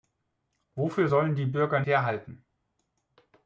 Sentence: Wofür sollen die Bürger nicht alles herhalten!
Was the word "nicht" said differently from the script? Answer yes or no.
yes